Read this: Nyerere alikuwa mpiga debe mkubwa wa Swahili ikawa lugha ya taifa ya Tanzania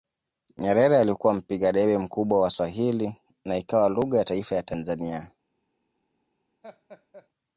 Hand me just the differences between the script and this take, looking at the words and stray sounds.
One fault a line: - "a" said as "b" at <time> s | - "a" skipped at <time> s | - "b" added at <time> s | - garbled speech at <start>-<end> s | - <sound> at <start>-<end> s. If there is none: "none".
- "na" added at 3.5 s
- laugh at 6.6-7.3 s